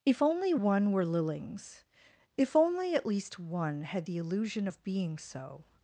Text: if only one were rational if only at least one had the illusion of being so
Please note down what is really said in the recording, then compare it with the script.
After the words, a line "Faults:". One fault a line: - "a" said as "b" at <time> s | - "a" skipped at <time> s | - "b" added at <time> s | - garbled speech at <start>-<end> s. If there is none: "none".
if only one were lillings if only at least one had the illusion of being so
Faults:
- "rational" said as "lillings" at 1.0 s